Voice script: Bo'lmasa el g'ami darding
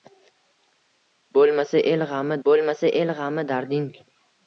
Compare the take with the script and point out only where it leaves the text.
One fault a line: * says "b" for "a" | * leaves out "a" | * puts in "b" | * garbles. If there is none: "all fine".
* puts in "bo'lmasa el g'ami"